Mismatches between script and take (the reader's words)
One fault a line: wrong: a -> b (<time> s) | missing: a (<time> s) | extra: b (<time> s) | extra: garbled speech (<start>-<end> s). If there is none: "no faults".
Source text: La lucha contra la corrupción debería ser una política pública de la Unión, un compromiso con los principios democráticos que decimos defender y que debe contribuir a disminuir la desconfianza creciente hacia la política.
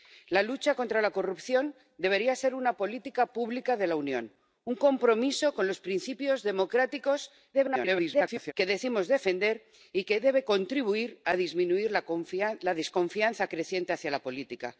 extra: garbled speech (7.5-8.5 s)